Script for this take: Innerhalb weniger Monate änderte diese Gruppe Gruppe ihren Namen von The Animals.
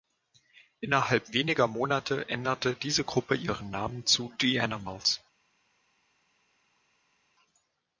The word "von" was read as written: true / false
false